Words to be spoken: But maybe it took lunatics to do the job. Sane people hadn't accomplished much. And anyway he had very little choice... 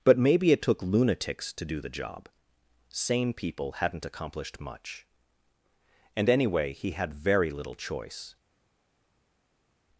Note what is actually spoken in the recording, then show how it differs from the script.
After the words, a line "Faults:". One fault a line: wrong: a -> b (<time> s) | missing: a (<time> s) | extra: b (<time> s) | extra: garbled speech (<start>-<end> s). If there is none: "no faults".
But maybe it took lunatics to do the job. Sane people hadn't accomplished much. And anyway he had very little choice...
Faults:
no faults